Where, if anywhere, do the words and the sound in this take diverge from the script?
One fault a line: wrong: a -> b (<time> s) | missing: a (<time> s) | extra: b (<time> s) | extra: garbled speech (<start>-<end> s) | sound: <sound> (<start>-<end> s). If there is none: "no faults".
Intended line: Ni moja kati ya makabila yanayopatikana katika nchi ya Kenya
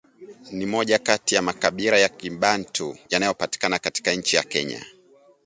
extra: ya Kibantu (2.0 s)